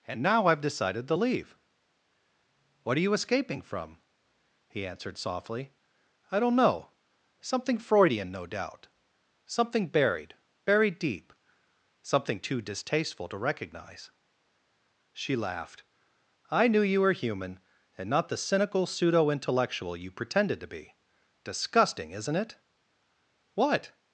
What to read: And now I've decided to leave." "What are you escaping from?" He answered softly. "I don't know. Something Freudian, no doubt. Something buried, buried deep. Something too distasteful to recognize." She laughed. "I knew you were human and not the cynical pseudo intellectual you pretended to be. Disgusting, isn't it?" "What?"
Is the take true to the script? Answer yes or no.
yes